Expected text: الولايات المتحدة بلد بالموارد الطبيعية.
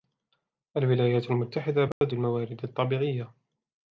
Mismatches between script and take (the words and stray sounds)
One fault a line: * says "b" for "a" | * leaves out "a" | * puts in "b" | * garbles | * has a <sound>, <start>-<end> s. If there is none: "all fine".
* has a dropout, 1.9-2.0 s